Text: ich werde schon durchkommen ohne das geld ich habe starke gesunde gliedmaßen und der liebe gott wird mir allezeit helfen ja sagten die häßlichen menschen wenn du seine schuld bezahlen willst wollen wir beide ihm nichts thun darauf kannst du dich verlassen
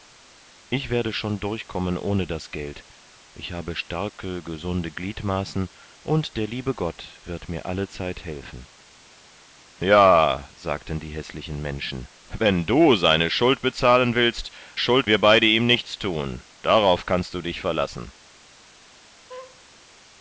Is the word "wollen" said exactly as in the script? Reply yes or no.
no